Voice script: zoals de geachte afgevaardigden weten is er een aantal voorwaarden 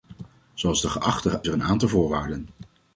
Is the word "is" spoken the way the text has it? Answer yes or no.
no